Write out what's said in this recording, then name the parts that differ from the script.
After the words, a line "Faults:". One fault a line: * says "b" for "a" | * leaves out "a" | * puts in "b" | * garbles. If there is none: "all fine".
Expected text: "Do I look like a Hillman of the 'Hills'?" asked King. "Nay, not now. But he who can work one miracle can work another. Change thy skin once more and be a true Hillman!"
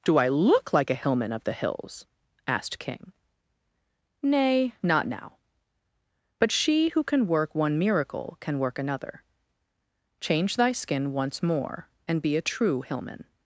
"Do I look like a Hillman of the 'Hills'?" asked King. "Nay, not now. But she who can work one miracle can work another. Change thy skin once more and be a true Hillman!"
Faults:
* says "she" for "he"